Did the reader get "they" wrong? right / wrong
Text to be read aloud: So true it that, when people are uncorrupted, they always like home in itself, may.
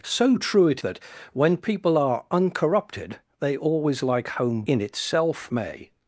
right